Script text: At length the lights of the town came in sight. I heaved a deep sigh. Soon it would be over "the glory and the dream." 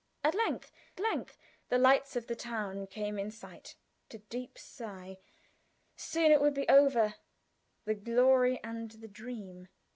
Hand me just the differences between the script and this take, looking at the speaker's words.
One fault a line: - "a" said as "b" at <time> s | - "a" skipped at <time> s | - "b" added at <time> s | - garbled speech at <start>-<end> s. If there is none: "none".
- "length" added at 1.0 s
- "I heaved" skipped at 3.8 s